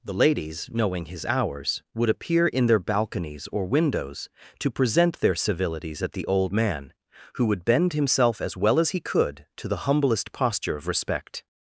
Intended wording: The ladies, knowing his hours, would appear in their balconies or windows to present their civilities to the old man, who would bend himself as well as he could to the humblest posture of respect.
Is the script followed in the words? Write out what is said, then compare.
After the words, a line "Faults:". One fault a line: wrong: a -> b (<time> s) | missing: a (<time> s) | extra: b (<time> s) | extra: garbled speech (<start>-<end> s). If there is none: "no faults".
The ladies, knowing his hours, would appear in their balconies or windows to present their civilities at the old man, who would bend himself as well as he could to the humblest posture of respect.
Faults:
wrong: to -> at (6.0 s)